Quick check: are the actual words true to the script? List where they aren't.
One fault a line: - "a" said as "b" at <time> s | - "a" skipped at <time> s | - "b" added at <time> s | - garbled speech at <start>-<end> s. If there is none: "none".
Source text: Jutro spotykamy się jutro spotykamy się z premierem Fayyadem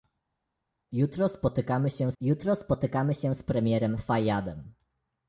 none